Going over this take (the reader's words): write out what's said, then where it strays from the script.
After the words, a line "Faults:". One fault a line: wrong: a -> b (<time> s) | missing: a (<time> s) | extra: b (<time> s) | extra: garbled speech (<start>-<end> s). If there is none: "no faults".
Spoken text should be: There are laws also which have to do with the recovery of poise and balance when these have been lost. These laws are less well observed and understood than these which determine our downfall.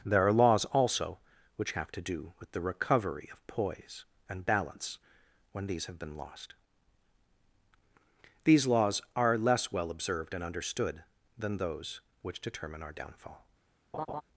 There are laws also which have to do with the recovery of poise and balance when these have been lost. These laws are less well observed and understood than those which determine our downfall.
Faults:
wrong: these -> those (11.6 s)